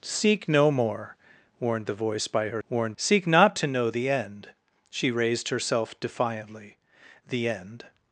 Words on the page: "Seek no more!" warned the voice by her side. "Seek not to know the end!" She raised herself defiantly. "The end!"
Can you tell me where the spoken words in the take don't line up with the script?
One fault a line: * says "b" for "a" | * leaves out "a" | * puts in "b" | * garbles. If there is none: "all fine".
* says "warned" for "side"